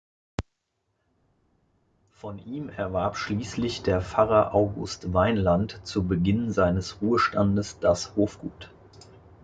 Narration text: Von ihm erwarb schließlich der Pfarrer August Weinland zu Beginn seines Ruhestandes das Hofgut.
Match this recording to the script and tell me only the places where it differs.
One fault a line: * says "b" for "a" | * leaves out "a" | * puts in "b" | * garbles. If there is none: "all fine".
all fine